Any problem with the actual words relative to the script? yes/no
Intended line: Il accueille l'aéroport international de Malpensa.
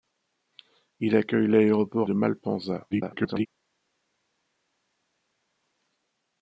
yes